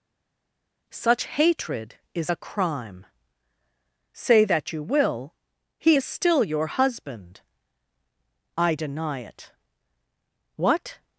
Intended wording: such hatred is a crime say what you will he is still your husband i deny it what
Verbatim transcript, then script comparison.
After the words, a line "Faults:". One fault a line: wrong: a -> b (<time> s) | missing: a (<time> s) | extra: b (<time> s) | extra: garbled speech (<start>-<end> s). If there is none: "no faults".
such hatred is a crime say that you will he is still your husband i deny it what
Faults:
wrong: what -> that (4.4 s)